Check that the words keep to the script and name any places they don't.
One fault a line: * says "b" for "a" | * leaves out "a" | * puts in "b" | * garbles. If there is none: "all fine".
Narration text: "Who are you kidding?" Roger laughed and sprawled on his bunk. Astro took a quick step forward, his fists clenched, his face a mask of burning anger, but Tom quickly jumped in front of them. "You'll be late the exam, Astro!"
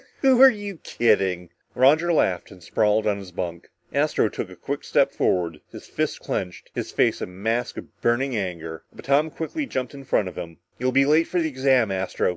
* says "him" for "them"
* puts in "for"